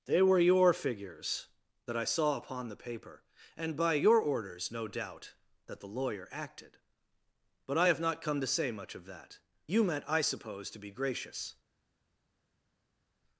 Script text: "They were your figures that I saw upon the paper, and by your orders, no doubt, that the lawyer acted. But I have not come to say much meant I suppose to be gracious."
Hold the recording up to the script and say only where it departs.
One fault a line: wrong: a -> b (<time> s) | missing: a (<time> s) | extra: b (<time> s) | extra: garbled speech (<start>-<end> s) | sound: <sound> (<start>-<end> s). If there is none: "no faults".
extra: of that You (8.9 s)